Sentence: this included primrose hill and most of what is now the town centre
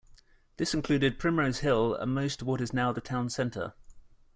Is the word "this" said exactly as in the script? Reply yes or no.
yes